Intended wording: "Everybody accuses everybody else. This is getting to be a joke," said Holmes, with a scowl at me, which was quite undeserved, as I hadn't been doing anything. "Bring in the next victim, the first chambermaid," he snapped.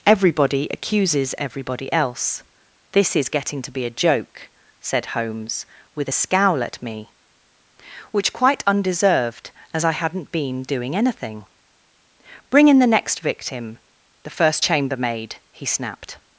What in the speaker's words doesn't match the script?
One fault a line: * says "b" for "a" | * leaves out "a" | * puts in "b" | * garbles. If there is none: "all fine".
* leaves out "was"